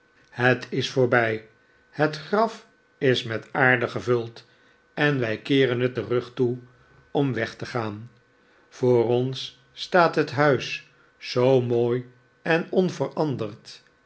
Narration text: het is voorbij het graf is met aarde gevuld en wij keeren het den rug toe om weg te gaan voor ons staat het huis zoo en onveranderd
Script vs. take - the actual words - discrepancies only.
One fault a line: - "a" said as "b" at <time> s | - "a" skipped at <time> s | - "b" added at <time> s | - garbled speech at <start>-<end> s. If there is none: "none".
- "mooi" added at 11.6 s